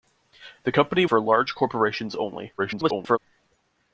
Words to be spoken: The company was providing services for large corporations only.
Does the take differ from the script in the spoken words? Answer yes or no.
yes